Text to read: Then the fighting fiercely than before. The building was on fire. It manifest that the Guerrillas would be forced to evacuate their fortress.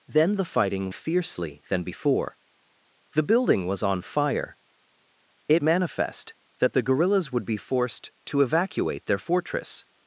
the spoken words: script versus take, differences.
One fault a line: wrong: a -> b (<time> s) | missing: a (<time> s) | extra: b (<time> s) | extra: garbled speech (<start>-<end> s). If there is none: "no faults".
no faults